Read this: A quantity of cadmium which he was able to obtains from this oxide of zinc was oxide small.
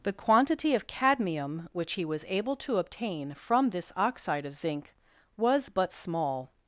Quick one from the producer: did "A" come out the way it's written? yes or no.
no